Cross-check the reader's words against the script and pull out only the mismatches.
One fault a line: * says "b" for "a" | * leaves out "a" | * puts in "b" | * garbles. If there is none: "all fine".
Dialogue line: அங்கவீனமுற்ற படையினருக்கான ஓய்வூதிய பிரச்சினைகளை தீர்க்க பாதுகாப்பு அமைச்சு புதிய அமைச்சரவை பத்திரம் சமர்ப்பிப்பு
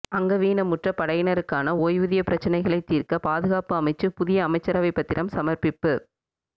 all fine